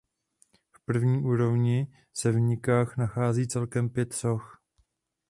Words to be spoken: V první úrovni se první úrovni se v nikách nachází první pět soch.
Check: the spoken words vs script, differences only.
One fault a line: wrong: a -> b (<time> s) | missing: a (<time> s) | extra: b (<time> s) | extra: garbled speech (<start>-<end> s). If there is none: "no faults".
missing: první úrovni se (2.3 s)
wrong: první -> celkem (3.5 s)